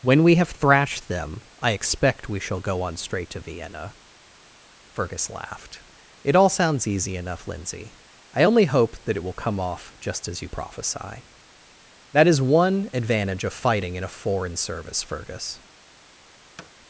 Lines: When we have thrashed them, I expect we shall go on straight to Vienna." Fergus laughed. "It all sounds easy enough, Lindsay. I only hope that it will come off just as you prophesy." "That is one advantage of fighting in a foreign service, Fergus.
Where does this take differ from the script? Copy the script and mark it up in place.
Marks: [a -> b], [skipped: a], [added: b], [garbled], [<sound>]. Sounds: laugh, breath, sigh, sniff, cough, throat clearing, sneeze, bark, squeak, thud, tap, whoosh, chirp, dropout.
When we have thrashed them, I expect we shall go on straight to Vienna." Fergus laughed. "It all sounds easy enough, Lindsay. I only hope that it will come off just as you prophesy." "That is one advantage of fighting in a foreign service, Fergus. [thud]